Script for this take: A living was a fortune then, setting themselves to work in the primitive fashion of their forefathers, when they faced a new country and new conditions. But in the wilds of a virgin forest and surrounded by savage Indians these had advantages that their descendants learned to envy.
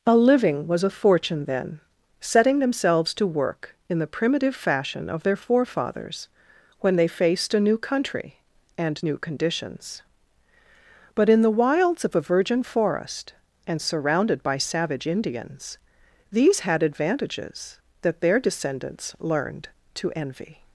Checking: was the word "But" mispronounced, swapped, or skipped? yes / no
no